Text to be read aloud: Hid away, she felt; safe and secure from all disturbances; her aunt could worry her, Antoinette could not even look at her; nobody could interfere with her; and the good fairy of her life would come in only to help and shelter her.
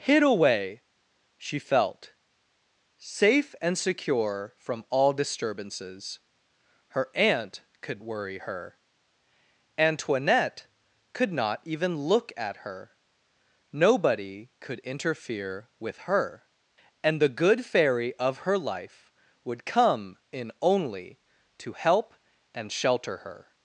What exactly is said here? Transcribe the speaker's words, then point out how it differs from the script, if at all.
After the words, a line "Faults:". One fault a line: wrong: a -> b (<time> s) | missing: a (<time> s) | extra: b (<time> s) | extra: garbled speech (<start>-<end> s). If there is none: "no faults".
Hid away, she felt; safe and secure from all disturbances; her aunt could worry her, Antoinette could not even look at her; nobody could interfere with her; and the good fairy of her life would come in only to help and shelter her.
Faults:
no faults